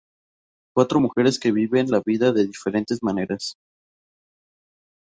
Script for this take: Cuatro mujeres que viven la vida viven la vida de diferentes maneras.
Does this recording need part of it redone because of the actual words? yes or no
yes